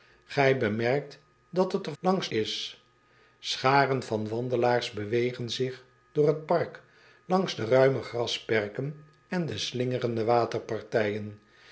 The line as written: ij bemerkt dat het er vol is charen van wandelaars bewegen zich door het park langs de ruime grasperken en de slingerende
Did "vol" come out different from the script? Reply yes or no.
yes